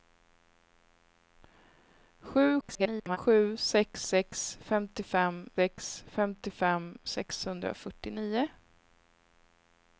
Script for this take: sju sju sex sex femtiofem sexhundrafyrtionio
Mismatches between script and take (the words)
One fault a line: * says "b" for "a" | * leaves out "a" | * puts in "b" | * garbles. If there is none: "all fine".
* garbles
* puts in "sex femtiofem"